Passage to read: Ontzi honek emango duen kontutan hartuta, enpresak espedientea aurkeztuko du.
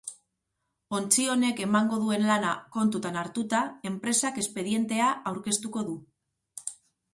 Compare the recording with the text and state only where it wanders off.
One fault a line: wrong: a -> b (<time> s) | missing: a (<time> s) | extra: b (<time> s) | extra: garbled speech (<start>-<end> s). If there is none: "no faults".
extra: lana (2.3 s)